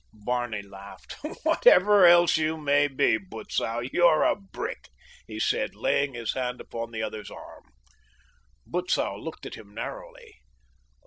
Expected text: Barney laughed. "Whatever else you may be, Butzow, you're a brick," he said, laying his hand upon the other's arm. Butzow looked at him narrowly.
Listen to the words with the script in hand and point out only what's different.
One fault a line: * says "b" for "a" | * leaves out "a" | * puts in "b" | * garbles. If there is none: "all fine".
all fine